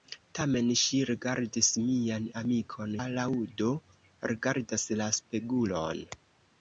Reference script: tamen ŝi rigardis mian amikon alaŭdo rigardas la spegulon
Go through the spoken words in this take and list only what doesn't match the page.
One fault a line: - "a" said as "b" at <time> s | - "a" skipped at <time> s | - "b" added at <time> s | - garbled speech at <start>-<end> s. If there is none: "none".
none